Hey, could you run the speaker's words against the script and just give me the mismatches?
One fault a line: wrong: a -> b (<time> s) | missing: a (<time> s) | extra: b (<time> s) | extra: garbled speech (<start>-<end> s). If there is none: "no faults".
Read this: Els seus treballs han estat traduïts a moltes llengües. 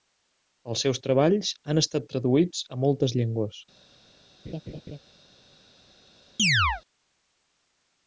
no faults